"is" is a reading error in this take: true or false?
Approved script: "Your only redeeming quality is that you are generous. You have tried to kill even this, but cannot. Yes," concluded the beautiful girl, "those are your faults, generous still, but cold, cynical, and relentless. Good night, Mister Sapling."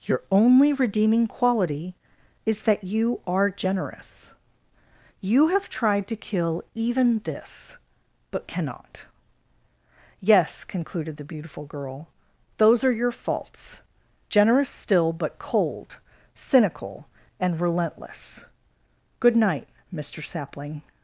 false